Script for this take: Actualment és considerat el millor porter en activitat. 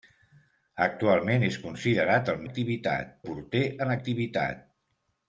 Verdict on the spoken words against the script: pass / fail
fail